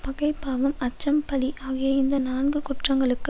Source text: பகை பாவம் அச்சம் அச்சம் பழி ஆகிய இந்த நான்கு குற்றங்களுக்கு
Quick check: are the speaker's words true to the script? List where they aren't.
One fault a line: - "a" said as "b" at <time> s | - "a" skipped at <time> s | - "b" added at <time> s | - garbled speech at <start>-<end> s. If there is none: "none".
- "அச்சம்" skipped at 1.2 s